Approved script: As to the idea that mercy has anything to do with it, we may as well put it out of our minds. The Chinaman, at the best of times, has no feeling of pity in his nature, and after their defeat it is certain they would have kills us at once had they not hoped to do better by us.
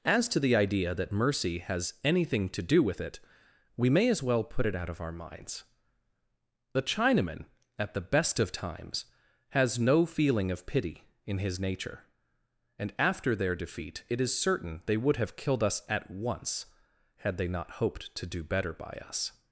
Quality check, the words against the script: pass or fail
fail